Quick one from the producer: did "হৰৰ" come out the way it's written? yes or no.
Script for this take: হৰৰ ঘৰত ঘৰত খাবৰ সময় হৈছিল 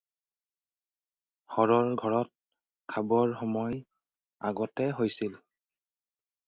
yes